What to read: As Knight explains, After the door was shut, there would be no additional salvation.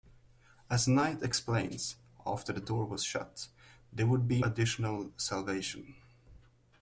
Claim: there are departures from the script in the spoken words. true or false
true